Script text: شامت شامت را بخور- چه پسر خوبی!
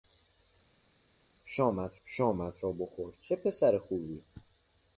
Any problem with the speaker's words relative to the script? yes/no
no